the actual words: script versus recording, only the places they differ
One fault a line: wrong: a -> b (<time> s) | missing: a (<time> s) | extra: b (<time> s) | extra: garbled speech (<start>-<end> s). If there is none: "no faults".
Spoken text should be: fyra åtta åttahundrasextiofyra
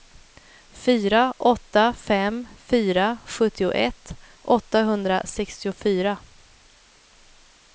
extra: fem fyra sjuttioett (1.9 s)